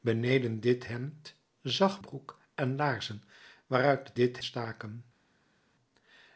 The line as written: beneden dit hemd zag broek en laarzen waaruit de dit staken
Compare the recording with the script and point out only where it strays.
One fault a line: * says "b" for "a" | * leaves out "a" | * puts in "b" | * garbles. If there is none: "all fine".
all fine